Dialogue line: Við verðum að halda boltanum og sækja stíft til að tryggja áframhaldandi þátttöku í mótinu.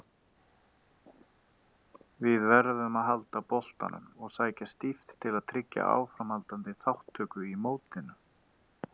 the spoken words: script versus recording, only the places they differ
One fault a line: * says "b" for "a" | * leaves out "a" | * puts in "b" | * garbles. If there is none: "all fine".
all fine